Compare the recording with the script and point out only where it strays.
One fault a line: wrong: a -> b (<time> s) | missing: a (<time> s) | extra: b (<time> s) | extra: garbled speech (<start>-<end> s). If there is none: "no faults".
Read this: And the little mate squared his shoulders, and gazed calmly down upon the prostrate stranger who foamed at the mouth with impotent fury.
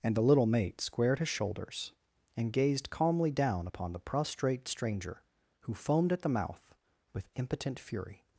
no faults